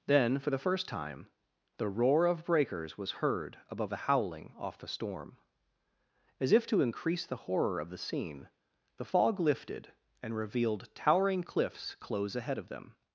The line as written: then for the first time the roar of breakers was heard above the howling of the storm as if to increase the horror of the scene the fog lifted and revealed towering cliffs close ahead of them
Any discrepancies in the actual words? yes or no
yes